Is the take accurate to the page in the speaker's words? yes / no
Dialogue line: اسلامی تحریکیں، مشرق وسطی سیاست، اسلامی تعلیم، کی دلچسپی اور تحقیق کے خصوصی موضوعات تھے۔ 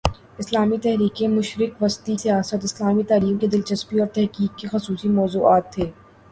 yes